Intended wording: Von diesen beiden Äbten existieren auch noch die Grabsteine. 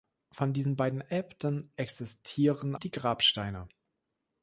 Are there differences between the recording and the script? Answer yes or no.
yes